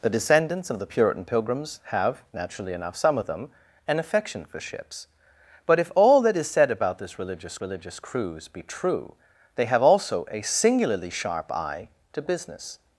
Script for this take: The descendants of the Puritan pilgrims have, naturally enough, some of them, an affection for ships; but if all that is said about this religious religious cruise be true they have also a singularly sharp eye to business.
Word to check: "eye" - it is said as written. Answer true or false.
true